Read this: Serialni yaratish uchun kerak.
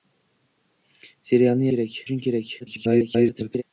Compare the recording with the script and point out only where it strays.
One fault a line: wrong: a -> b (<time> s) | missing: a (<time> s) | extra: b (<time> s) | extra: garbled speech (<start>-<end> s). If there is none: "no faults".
wrong: yaratish -> kerak (1.7 s)
extra: garbled speech (2.6-3.6 s)